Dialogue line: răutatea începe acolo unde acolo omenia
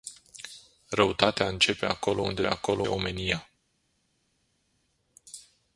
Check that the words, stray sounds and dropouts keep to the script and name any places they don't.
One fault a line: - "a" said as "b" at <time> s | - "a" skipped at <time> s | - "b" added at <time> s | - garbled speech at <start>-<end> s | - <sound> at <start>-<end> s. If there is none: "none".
none